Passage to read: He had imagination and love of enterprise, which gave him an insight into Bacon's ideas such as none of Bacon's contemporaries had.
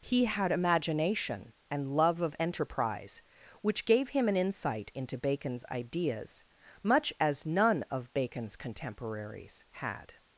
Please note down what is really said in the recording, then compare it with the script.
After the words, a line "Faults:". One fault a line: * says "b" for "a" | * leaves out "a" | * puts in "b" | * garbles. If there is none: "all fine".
He had imagination and love of enterprise, which gave him an insight into Bacon's ideas much as none of Bacon's contemporaries had.
Faults:
* says "much" for "such"